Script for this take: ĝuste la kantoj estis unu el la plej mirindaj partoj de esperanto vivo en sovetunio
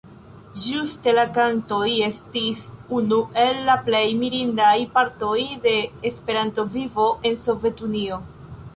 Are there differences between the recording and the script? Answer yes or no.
no